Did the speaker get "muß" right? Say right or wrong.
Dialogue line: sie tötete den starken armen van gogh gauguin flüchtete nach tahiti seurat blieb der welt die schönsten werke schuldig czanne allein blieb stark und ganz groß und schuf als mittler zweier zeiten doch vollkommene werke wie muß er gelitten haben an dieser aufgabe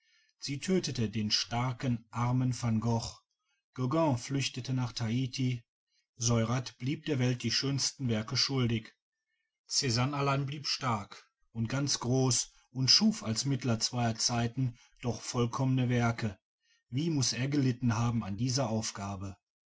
right